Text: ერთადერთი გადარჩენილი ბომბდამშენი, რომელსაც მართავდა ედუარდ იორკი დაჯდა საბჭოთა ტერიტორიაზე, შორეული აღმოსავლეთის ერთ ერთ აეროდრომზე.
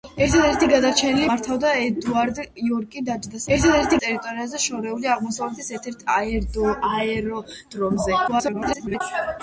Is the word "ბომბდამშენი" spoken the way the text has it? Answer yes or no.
no